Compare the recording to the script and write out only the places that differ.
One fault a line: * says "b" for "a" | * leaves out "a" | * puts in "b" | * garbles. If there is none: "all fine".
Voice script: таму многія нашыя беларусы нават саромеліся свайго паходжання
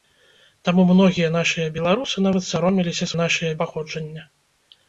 * says "нашыя" for "свайго"